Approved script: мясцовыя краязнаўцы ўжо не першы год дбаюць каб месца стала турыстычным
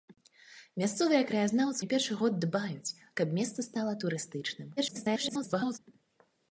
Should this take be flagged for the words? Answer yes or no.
yes